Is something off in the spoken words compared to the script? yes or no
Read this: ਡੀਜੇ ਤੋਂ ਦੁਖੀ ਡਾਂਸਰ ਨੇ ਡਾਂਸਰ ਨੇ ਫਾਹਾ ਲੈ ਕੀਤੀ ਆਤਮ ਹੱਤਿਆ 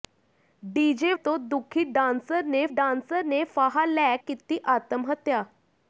no